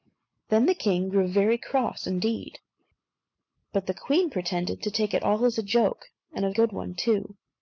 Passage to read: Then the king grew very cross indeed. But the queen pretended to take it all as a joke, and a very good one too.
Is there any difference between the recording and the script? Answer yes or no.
yes